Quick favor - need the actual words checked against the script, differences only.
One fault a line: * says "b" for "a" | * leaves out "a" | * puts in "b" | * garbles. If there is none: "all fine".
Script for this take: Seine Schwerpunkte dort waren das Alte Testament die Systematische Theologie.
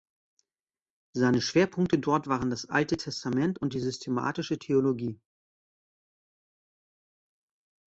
* puts in "und"